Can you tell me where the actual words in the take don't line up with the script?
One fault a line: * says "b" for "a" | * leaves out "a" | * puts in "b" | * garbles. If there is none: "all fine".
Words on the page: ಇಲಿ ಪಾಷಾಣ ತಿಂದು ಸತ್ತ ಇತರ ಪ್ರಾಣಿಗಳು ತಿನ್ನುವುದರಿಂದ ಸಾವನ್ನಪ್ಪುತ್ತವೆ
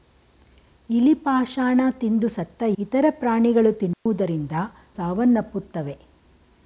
all fine